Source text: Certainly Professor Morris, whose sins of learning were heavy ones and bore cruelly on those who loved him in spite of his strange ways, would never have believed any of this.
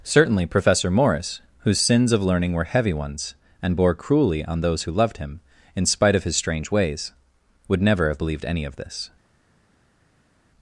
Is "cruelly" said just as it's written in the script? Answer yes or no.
yes